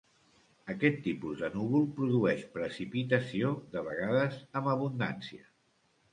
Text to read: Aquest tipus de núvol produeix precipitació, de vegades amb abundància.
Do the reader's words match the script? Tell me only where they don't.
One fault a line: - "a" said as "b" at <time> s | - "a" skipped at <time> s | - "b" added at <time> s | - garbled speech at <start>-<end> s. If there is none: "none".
none